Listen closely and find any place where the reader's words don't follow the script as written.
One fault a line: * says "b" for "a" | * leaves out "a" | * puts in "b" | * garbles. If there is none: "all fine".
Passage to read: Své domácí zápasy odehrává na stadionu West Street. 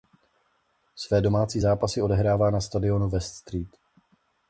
all fine